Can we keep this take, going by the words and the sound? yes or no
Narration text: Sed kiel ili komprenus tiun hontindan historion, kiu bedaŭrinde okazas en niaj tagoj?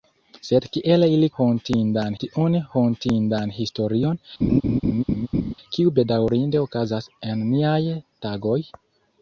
no